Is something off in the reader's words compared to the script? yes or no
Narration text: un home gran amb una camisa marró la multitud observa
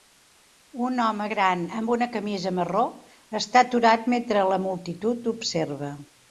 yes